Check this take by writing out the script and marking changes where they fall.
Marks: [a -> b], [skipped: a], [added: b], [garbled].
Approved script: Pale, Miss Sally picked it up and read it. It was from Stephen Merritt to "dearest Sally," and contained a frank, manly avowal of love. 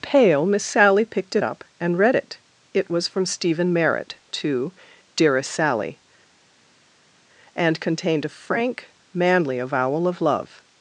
Pale, Miss Sally picked it up and read it. It was from Stephen Merritt to "dearest Sally," and contained a frank, manly avowal of love.